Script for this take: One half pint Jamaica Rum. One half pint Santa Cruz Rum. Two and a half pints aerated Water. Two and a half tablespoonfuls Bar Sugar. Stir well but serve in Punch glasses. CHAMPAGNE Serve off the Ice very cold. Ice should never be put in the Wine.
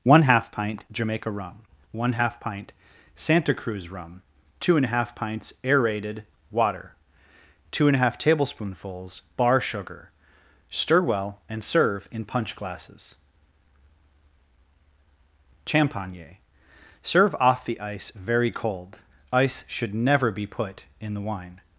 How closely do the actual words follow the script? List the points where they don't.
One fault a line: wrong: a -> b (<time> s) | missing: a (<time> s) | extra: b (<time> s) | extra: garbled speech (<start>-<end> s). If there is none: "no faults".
wrong: but -> and (11.5 s)